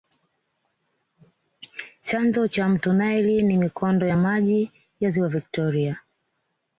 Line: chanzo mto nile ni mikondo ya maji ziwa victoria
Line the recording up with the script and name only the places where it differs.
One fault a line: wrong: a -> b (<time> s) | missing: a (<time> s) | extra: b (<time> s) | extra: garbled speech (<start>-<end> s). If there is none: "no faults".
extra: cha (2.5 s)
extra: ya (5.0 s)